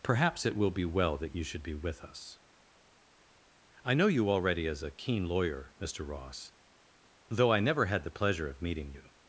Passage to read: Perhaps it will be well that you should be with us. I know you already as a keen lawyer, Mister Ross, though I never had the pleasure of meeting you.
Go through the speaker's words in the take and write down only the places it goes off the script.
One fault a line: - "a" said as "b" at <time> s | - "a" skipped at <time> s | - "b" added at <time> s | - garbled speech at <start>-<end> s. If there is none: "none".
none